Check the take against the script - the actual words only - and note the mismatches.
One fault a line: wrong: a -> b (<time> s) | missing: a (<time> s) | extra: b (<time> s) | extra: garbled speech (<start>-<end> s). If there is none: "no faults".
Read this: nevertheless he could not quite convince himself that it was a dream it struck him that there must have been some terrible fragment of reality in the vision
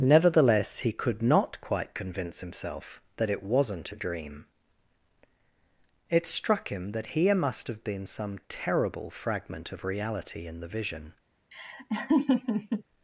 wrong: was -> wasn't (3.4 s)
wrong: there -> here (7.1 s)